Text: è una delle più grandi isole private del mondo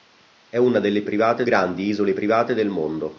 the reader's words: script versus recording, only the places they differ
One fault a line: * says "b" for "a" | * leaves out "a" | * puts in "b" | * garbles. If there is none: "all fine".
* says "private" for "più"